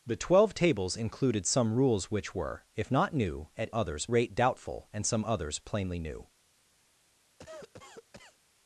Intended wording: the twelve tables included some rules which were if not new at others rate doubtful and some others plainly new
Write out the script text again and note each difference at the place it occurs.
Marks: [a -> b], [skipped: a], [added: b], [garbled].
the twelve tables included some rules which were if not new at others rate doubtful and some others plainly new